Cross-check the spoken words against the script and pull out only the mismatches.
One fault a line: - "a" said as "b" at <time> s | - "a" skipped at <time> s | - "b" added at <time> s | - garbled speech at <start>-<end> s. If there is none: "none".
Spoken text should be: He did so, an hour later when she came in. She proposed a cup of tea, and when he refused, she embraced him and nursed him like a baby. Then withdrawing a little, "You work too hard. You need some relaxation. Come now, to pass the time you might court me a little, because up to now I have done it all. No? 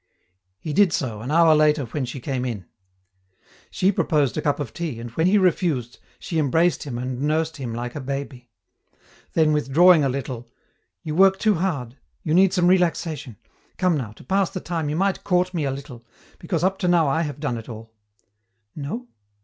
none